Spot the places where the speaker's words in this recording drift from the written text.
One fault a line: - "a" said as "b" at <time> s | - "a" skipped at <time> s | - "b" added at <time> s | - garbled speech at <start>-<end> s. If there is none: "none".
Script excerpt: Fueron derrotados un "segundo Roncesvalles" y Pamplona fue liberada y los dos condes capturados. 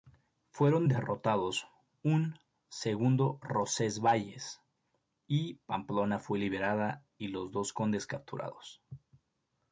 none